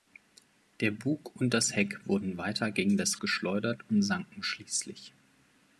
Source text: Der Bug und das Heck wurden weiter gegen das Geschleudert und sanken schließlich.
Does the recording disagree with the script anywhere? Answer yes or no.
no